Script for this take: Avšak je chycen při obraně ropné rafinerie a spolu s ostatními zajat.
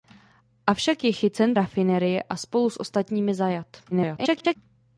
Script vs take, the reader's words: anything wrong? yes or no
yes